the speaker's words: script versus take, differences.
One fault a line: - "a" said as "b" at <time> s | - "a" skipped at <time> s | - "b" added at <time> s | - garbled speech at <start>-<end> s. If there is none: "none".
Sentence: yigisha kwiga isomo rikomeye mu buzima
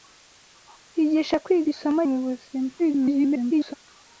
- "rikomeye" skipped at 2.0 s
- garbled speech at 2.8-3.7 s